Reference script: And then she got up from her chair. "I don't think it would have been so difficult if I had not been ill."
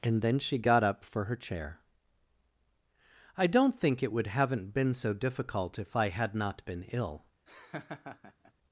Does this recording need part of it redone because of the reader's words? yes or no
yes